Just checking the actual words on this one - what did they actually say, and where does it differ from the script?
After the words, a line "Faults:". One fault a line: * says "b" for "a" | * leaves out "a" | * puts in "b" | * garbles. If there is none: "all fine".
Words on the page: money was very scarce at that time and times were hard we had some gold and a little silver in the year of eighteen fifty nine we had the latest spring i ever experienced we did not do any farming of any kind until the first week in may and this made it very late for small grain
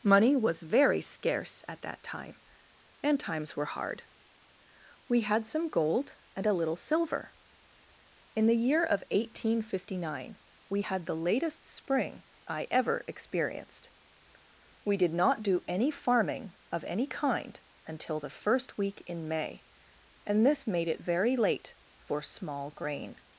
money was very scarce at that time and times were hard we had some gold and a little silver in the year of eighteen fifty nine we had the latest spring i ever experienced we did not do any farming of any kind until the first week in may and this made it very late for small grain
Faults:
all fine